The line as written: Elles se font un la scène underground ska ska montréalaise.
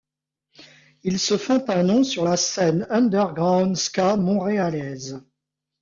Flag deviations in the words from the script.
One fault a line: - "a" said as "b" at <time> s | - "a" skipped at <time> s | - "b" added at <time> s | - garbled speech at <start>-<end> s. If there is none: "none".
- "Elles" said as "Ils" at 1.0 s
- "nom sur" added at 1.8 s
- "ska" skipped at 4.1 s